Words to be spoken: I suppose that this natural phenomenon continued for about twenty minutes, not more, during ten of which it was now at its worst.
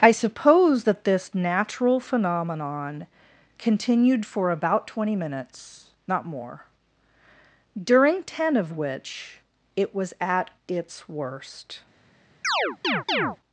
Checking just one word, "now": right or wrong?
wrong